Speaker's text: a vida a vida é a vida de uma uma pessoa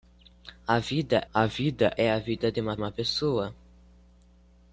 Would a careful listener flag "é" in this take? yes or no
no